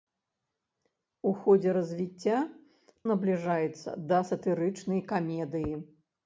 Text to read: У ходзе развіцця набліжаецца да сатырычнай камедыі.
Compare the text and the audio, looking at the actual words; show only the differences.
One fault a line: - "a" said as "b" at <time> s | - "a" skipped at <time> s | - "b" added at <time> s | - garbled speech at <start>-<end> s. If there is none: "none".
none